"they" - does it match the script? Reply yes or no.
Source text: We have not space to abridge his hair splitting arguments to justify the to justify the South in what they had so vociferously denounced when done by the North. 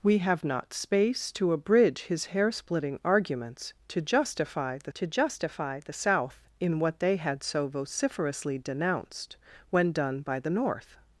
yes